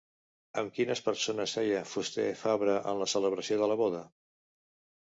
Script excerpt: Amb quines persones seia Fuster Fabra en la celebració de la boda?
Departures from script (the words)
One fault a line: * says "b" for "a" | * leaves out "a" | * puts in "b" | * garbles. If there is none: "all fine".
all fine